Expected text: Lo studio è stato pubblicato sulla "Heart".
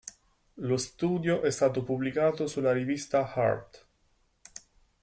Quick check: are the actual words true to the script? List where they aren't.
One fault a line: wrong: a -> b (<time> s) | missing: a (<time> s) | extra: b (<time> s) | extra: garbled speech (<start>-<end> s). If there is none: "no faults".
extra: rivista (2.7 s)